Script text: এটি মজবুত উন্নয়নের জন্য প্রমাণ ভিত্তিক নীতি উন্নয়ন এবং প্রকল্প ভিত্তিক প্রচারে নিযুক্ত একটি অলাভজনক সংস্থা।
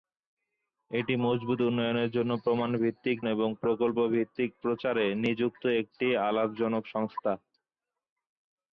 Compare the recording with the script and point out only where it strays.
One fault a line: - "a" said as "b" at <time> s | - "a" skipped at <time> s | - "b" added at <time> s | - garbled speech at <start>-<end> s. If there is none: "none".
- "নীতি উন্নয়ন" skipped at 3.2 s